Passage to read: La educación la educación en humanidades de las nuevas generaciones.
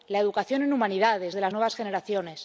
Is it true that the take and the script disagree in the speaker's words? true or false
true